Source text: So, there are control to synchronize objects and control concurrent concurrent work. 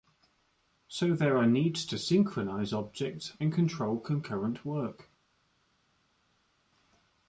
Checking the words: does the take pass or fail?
fail